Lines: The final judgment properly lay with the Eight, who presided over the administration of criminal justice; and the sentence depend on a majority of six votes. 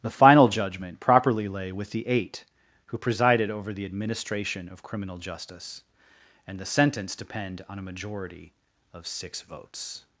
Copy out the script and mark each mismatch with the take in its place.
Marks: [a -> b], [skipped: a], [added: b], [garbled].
The final judgment properly lay with the Eight, who presided over the administration of criminal justice; and the sentence depend on a majority of six votes.